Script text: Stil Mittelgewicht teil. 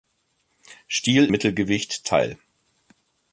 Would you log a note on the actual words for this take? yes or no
no